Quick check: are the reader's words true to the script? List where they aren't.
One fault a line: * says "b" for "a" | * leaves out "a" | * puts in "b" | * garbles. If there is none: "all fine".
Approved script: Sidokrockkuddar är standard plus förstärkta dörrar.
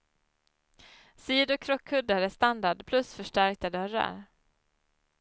all fine